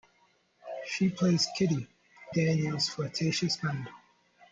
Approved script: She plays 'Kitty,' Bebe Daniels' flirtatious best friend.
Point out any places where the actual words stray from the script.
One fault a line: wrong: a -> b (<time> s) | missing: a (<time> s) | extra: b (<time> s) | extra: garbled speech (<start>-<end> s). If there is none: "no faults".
missing: Bebe (1.9 s)
missing: best (3.6 s)